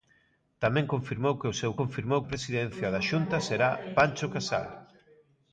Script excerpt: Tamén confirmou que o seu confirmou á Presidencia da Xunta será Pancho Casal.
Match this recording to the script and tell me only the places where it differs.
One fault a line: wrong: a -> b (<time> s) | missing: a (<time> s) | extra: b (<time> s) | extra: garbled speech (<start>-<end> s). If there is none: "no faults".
no faults